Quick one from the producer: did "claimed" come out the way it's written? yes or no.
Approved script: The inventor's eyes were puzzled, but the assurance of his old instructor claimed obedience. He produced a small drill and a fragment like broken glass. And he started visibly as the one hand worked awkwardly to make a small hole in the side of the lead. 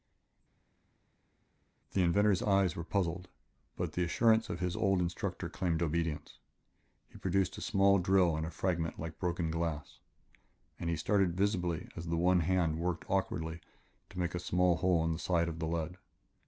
yes